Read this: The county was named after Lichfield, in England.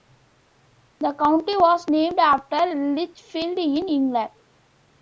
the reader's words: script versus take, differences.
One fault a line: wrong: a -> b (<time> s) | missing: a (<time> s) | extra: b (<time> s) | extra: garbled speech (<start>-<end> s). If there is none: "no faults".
no faults